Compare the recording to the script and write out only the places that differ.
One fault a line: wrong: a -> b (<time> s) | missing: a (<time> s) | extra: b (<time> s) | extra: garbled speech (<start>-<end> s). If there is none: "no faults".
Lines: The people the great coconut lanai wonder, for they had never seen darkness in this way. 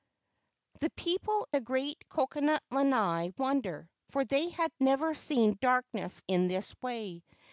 no faults